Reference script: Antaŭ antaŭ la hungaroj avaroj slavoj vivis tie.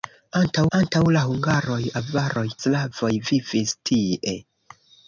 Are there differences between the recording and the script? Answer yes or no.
no